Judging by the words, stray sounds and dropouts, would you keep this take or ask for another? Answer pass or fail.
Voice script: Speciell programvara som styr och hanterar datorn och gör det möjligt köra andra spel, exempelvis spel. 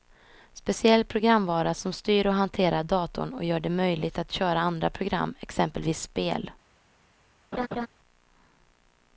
fail